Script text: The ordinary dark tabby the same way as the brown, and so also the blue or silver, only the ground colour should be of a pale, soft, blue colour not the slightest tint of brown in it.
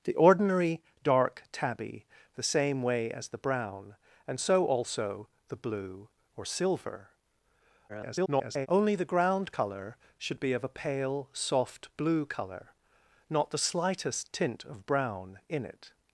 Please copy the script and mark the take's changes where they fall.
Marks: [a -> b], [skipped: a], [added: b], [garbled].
The ordinary dark tabby the same way as the brown, and so also the blue or silver, [garbled] only the ground colour should be of a pale, soft, blue colour not the slightest tint of brown in it.